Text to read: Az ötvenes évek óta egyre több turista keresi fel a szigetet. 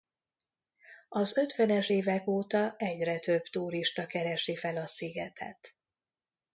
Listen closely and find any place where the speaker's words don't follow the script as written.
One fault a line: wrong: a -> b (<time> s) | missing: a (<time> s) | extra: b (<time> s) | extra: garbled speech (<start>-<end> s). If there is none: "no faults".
no faults